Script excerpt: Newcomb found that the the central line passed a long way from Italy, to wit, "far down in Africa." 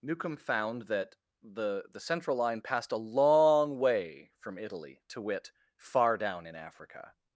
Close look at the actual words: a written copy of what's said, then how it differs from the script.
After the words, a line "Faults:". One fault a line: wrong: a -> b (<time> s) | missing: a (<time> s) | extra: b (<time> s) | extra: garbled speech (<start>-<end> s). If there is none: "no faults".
Newcomb found that the the central line passed a long way from Italy, to wit, "far down in Africa."
Faults:
no faults